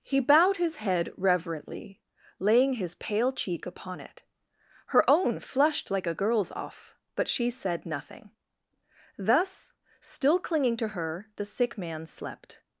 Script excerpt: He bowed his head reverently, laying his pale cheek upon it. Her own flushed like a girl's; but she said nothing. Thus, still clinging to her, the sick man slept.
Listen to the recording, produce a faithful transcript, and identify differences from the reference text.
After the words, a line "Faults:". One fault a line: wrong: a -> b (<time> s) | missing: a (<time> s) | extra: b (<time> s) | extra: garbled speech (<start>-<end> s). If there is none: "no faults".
He bowed his head reverently, laying his pale cheek upon it. Her own flushed like a girl's; off but she said nothing. Thus, still clinging to her, the sick man slept.
Faults:
extra: off (6.5 s)